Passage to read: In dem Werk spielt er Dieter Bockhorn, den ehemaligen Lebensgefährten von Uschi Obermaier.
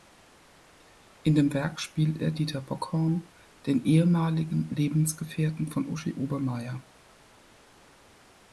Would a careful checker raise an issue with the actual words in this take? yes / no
no